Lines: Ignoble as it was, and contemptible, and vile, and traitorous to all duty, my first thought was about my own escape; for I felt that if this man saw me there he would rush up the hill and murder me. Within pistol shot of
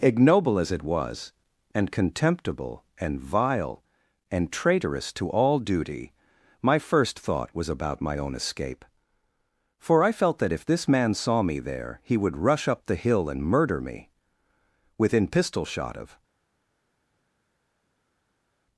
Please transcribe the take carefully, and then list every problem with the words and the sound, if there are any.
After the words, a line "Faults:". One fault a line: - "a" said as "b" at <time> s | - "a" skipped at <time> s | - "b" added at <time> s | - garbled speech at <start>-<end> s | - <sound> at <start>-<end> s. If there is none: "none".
Ignoble as it was, and contemptible, and vile, and traitorous to all duty, my first thought was about my own escape; for I felt that if this man saw me there he would rush up the hill and murder me. Within pistol shot of
Faults:
none